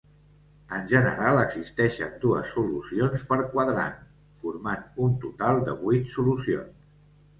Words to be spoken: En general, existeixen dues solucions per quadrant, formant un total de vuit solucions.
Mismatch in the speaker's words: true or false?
false